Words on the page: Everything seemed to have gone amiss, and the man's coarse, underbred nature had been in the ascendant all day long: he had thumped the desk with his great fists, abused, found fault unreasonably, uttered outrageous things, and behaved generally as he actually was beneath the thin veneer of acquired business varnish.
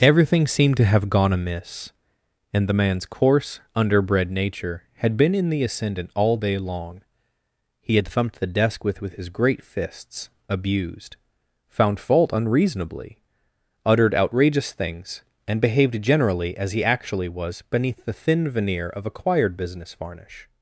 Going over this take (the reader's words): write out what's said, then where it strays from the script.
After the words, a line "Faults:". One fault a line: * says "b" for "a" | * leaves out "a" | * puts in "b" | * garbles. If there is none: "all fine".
Everything seemed to have gone amiss, and the man's coarse, underbred nature had been in the ascendant all day long: he had thumped the desk with with his great fists, abused, found fault unreasonably, uttered outrageous things, and behaved generally as he actually was beneath the thin veneer of acquired business varnish.
Faults:
* puts in "with"